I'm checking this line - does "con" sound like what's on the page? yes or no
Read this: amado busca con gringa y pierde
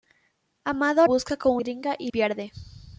yes